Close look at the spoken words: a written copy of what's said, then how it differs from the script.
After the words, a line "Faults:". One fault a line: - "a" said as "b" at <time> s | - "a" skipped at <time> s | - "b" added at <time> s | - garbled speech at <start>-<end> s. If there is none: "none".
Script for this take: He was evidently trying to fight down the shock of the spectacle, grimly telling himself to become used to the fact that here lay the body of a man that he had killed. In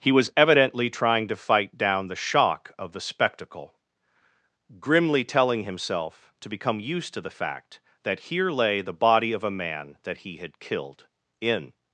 He was evidently trying to fight down the shock of the spectacle, grimly telling himself to become used to the fact that here lay the body of a man that he had killed. In
Faults:
none